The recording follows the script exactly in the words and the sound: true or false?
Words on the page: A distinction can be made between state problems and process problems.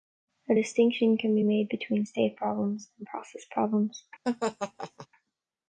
false